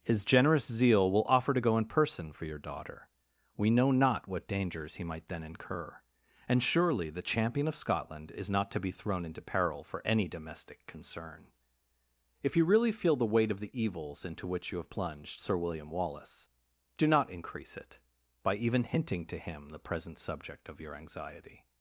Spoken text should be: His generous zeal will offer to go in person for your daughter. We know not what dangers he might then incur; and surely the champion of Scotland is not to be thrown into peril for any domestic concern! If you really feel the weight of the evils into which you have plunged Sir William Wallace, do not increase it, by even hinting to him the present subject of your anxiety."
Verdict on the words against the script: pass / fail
pass